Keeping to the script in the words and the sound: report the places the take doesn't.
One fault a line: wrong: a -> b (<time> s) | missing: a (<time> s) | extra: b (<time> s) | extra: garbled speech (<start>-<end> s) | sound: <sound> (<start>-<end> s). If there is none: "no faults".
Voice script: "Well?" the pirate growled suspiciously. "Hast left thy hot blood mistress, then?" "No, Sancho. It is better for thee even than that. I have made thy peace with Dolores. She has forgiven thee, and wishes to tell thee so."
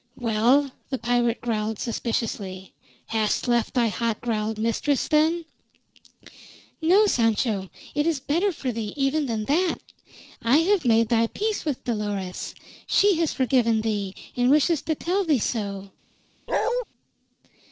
wrong: blood -> growled (4.2 s)
sound: bark (16.5-16.8 s)